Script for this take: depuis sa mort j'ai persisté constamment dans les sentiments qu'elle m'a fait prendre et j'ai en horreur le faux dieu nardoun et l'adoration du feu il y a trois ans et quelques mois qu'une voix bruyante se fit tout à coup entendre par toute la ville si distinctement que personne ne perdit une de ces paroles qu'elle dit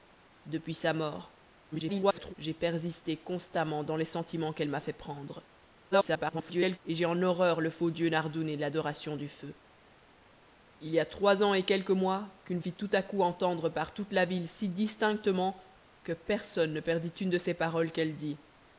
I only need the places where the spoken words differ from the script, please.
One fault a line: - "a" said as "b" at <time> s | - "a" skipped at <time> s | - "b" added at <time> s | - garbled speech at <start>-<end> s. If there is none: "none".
- garbled speech at 1.7-2.3 s
- garbled speech at 5.9-6.8 s
- "voix bruyante se" skipped at 12.6 s